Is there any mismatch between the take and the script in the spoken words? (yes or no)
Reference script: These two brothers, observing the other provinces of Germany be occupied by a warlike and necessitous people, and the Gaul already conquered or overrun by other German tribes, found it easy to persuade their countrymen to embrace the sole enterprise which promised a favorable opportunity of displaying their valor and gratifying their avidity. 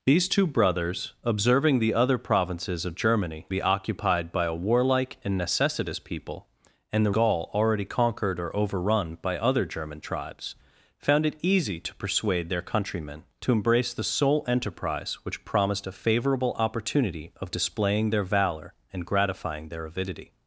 no